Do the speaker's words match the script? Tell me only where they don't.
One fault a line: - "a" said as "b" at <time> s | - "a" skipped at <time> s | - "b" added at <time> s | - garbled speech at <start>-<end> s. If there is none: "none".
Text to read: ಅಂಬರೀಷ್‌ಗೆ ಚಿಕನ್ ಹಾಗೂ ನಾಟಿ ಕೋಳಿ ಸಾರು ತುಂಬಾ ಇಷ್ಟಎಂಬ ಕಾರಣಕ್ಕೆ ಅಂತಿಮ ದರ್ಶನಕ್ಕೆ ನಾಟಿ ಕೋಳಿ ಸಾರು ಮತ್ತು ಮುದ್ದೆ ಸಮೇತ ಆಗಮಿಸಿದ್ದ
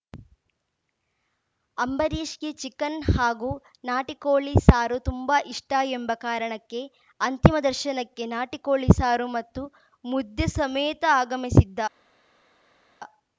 none